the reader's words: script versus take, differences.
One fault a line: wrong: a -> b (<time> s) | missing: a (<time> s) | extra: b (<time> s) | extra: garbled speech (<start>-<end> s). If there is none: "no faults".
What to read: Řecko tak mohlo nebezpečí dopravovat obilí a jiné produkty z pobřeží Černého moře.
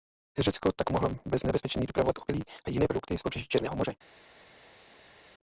extra: bez (1.2 s)